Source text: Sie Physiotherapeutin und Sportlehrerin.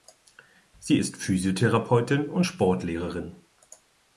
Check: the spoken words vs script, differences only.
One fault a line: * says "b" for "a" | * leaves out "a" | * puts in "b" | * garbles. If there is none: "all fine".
* puts in "ist"